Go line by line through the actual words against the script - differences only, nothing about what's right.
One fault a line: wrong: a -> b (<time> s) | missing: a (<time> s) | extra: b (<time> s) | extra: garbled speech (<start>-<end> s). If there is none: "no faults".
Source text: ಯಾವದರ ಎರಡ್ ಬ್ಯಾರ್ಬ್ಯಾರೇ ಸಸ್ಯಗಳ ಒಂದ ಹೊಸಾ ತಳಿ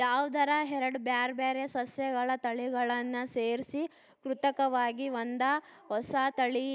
extra: ತಳಿಗಳನ್ನ ಸೇರ್ಸಿ ಕೃತಕವಾಗಿ (2.4 s)